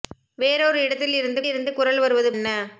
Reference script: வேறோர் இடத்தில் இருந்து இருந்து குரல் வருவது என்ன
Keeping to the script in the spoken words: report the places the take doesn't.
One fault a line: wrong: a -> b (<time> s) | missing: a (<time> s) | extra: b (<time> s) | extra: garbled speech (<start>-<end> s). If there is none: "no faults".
no faults